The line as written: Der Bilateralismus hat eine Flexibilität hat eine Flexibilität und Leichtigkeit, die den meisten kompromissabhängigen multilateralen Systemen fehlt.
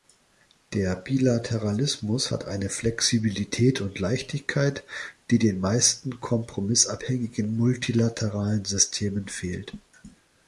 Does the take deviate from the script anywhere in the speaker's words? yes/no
yes